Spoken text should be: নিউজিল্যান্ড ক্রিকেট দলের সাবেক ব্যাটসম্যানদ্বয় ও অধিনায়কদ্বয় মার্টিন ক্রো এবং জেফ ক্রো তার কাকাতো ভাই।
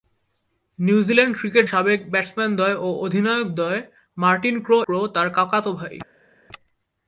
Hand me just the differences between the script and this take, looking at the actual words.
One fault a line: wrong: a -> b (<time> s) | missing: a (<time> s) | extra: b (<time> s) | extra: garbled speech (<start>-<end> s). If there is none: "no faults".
missing: দলের (1.6 s)
missing: এবং জেফ (4.8 s)